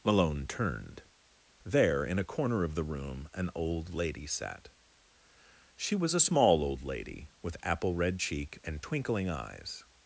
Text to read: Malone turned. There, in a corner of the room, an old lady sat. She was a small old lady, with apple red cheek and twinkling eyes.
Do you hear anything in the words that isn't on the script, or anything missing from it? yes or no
no